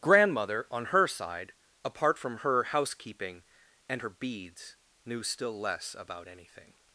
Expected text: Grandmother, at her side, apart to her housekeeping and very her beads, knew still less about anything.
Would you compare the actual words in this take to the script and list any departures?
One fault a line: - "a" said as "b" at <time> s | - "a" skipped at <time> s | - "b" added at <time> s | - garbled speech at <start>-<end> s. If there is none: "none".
- "at" said as "on" at 0.7 s
- "to" said as "from" at 2.2 s
- "very" skipped at 4.0 s